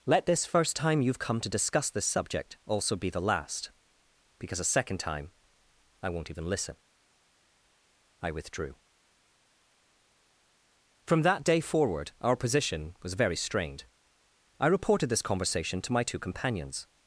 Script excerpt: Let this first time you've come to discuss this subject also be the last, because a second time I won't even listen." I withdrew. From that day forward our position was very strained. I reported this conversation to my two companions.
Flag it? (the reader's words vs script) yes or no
no